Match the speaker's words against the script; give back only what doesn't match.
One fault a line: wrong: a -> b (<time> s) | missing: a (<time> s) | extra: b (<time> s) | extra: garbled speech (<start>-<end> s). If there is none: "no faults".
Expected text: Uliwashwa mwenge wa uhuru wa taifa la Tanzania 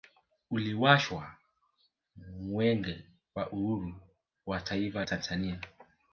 missing: la (5.0 s)